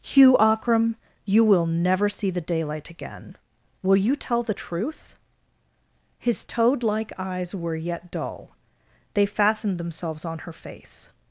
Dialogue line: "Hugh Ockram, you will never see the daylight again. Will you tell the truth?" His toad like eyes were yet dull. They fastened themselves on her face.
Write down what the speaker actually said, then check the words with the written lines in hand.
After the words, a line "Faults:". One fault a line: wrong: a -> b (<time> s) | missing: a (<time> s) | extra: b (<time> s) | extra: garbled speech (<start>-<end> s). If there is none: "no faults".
"Hugh Ockram, you will never see the daylight again. Will you tell the truth?" His toad like eyes were yet dull. They fastened themselves on her face.
Faults:
no faults